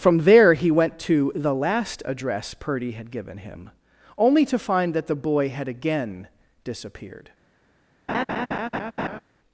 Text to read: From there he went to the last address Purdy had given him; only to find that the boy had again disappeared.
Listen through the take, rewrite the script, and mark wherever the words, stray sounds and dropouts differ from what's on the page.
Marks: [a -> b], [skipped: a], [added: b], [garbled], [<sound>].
From there he went to the last address Purdy had given him; only to find that the boy had again disappeared. [laugh]